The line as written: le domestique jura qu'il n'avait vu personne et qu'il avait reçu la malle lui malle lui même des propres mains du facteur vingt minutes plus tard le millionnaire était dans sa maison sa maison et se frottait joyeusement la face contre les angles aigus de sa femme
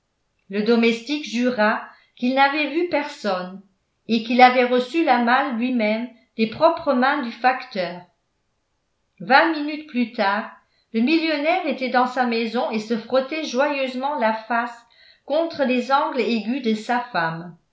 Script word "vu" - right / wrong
right